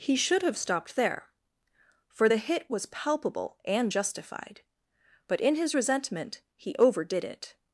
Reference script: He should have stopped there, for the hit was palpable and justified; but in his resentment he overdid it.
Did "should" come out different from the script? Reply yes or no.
no